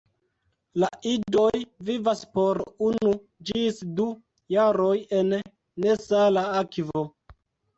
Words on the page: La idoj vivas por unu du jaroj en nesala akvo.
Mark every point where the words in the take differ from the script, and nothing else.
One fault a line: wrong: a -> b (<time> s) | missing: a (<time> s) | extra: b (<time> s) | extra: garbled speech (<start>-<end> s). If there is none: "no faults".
extra: ĝis (3.5 s)